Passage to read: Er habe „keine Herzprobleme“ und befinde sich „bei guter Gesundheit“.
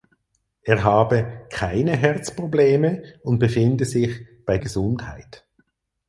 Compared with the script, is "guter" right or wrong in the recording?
wrong